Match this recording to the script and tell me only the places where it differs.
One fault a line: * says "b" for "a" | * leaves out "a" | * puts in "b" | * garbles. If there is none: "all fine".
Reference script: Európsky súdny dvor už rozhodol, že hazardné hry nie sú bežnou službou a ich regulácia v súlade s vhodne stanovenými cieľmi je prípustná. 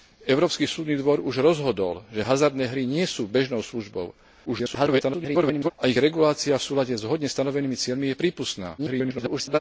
* garbles
* garbles